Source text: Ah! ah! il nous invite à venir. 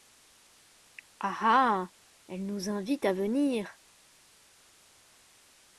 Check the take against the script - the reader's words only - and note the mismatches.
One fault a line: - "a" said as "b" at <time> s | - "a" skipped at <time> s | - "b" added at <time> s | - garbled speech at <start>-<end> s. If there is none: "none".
- "il" said as "elle" at 2.3 s